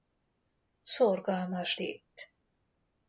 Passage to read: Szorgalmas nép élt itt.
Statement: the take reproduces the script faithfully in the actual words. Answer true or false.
false